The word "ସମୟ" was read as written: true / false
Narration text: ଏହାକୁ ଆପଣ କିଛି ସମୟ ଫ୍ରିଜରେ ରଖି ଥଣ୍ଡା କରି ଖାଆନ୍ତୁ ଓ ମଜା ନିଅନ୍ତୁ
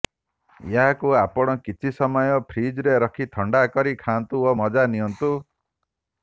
true